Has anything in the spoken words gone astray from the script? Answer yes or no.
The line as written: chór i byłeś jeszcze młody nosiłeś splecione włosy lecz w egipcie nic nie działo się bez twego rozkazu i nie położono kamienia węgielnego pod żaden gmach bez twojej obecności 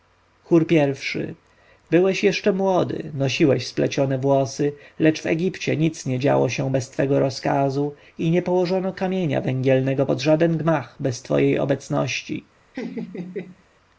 no